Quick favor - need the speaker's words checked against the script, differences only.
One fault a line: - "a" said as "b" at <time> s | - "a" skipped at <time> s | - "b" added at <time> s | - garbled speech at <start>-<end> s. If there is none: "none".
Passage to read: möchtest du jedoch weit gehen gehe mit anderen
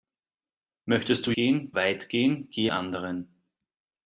- "jedoch" said as "gehen" at 1.3 s
- "mit" skipped at 2.7 s